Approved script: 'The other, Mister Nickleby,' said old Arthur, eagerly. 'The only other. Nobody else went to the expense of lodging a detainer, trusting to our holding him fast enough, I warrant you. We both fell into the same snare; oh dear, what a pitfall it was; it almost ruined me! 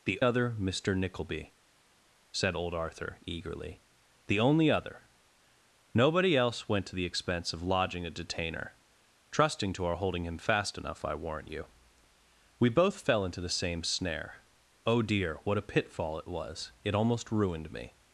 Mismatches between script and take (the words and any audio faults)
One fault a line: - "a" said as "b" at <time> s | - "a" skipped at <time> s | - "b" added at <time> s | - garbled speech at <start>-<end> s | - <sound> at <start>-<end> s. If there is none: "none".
none